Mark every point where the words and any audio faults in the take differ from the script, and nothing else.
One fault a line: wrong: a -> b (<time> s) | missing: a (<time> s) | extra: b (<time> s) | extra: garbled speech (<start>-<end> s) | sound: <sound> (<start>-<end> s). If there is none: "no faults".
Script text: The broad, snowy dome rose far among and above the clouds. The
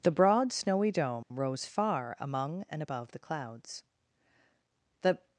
sound: dropout (1.2-1.3 s)